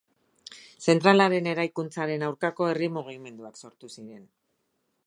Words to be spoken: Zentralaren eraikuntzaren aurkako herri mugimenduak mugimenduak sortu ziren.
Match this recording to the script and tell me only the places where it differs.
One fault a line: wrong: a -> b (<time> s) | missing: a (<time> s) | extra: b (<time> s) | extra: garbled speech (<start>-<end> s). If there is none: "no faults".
missing: mugimenduak (3.6 s)